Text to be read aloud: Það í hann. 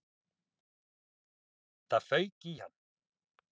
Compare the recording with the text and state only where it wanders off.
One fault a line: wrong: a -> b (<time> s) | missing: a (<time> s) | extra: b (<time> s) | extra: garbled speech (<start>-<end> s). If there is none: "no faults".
extra: fauk (2.1 s)